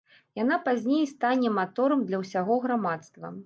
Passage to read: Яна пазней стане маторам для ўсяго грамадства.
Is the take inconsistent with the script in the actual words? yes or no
no